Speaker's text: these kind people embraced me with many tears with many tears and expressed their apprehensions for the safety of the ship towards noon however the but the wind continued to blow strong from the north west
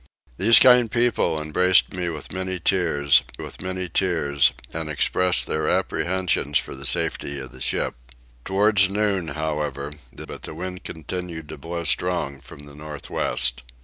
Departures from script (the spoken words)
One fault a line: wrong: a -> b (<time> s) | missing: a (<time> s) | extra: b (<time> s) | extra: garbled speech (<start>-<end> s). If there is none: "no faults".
no faults